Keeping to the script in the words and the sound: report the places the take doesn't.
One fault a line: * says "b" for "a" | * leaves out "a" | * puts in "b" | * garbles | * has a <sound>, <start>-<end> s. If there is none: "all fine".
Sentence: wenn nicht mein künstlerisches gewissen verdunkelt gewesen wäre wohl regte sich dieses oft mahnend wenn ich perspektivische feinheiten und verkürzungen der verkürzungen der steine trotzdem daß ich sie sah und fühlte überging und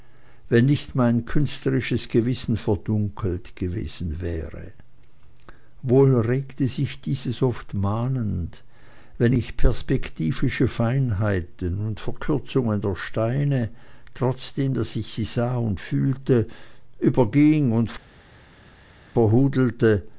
* leaves out "verkürzungen der"